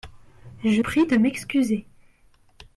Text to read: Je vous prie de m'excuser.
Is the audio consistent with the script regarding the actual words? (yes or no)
no